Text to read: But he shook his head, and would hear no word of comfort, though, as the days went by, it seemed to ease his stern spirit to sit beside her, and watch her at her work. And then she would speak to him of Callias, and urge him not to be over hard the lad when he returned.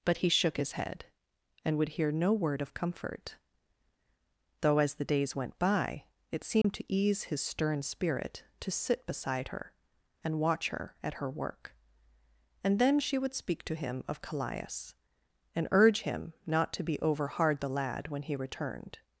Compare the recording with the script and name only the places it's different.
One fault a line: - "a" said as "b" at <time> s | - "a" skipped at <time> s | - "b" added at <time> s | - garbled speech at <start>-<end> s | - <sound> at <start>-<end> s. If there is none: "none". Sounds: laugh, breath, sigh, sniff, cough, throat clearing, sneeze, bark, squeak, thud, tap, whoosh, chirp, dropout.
- dropout at 6.6-6.6 s